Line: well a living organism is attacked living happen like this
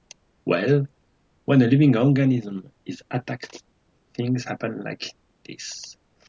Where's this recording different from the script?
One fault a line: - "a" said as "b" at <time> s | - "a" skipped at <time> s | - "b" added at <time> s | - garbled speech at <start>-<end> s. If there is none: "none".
- "when" added at 1.4 s
- "living" said as "things" at 4.2 s